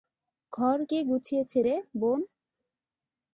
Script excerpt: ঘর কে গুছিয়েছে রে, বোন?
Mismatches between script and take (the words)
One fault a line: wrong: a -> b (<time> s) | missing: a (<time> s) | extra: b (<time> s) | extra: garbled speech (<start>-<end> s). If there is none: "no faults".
no faults